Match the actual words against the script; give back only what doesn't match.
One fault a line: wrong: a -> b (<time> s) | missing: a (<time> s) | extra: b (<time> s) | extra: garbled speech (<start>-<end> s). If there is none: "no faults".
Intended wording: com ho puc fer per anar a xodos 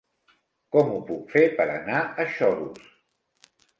no faults